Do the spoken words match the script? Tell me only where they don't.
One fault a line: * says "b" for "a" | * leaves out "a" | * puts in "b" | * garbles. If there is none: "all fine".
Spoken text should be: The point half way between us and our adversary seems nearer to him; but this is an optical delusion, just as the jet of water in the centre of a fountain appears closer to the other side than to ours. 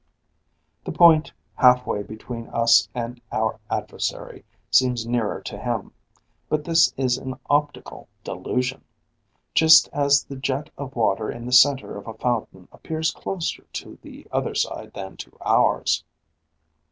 all fine